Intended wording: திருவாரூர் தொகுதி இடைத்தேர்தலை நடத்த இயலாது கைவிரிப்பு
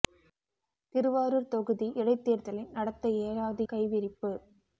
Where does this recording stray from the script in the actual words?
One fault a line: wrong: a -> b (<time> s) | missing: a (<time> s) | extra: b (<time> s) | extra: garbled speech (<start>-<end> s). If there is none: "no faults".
no faults